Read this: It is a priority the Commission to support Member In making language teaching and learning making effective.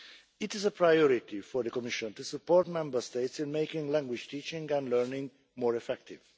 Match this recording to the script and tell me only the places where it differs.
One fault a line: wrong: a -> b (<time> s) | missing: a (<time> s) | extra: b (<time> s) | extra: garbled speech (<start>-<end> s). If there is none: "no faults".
extra: for (1.4 s)
extra: States (3.0 s)
wrong: making -> more (5.6 s)